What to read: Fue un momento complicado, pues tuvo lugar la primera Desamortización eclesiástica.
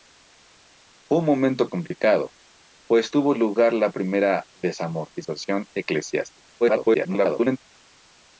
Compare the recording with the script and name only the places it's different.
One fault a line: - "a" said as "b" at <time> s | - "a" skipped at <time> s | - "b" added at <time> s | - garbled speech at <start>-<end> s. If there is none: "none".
- garbled speech at 6.6-7.6 s